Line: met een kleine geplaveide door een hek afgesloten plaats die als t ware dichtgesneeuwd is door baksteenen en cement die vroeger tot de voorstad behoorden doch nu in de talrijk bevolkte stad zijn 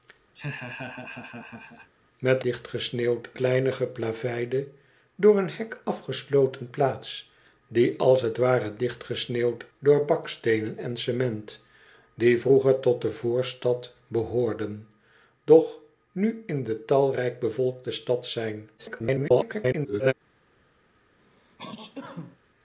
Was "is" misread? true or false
true